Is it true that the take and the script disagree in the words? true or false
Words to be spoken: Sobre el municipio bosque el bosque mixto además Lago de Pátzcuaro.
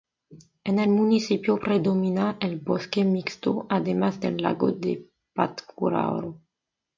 true